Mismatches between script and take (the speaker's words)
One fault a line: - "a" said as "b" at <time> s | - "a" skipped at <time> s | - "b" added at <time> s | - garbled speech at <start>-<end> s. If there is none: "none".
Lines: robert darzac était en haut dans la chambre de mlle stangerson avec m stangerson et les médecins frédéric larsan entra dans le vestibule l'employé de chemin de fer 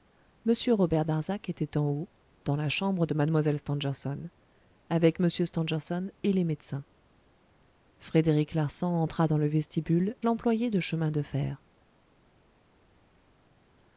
none